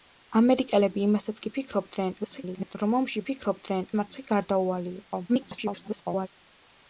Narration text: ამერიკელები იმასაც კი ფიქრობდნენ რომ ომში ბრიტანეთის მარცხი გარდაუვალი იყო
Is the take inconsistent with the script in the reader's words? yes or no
yes